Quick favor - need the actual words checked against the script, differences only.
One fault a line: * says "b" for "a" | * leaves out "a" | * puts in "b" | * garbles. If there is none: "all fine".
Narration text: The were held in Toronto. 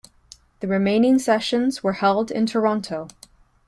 * puts in "remaining sessions"